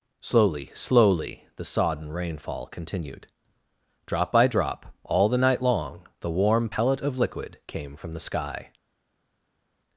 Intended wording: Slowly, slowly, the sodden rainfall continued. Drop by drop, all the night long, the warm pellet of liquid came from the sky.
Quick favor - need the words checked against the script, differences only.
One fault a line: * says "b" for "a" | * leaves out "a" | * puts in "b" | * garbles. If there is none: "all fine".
all fine